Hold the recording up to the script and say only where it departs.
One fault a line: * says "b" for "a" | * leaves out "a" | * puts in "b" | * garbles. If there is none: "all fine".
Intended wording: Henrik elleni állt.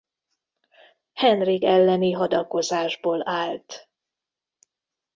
* puts in "hadakozásból"